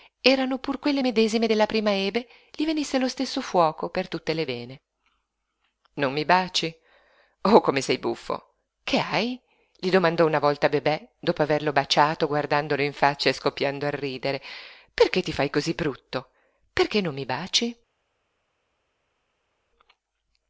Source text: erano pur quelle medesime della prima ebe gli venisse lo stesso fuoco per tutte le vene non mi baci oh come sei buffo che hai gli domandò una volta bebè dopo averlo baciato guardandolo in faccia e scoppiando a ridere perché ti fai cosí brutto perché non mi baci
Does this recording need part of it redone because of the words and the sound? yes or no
no